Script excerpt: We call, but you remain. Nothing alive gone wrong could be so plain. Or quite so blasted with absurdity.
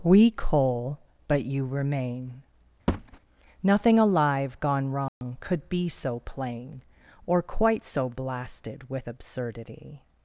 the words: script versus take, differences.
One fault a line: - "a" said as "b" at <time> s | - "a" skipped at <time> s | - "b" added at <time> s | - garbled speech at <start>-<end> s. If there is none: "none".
- "call" said as "coal" at 0.3 s